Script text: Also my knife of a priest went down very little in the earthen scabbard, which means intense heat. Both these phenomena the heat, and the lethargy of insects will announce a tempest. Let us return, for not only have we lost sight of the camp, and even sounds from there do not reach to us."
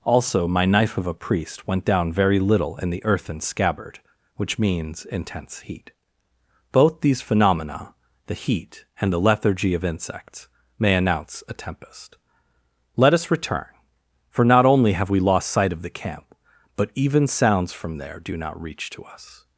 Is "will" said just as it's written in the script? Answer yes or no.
no